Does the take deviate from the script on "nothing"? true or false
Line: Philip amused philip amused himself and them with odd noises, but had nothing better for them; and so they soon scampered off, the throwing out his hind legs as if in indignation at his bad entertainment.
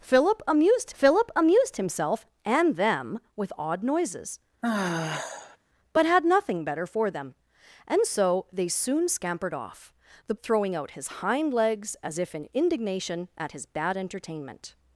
false